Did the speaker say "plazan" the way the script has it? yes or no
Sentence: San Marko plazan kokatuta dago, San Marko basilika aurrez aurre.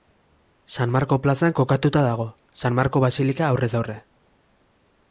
yes